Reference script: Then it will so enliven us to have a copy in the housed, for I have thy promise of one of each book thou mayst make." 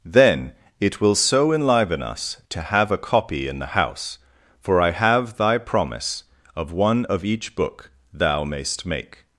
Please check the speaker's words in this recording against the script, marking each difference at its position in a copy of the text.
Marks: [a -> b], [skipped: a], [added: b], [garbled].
Then it will so enliven us to have a copy in the [housed, -> house] for I have thy promise of one of each book thou mayst make."